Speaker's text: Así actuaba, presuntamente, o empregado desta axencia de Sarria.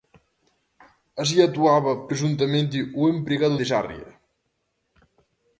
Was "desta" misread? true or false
true